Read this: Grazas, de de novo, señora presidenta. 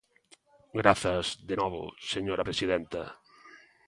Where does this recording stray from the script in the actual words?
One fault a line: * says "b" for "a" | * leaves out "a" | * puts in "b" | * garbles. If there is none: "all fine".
* leaves out "de"